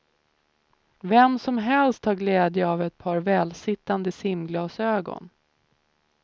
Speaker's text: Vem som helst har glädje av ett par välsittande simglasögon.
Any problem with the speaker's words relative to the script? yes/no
no